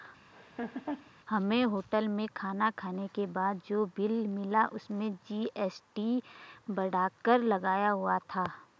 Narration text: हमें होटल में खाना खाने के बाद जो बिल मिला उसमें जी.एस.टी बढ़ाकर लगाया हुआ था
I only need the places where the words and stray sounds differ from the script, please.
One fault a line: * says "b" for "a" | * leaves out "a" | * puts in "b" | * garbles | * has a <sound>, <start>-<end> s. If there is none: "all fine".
* has a laugh, 0.3-1.1 s